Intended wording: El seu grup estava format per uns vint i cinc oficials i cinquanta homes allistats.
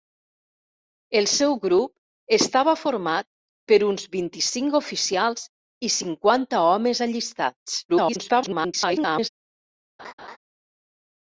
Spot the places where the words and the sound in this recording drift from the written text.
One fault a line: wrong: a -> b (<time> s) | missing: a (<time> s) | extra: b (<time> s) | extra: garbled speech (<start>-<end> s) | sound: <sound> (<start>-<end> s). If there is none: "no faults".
extra: garbled speech (7.9-9.3 s)
sound: laugh (10.0-10.4 s)